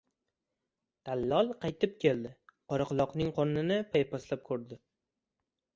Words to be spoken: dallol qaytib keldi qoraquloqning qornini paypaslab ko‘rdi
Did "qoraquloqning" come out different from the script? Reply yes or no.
no